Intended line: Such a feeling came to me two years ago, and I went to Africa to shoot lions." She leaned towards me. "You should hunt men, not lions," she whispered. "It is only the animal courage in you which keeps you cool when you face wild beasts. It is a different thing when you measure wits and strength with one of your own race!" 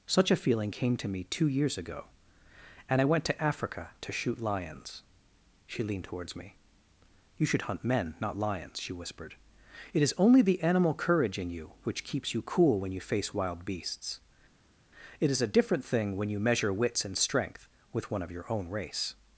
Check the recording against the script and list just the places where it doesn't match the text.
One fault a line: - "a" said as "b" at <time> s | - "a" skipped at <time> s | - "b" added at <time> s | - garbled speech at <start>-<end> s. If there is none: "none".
none